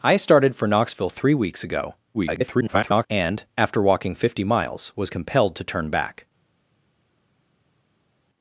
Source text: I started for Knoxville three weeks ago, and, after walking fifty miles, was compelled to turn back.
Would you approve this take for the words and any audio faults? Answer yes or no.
no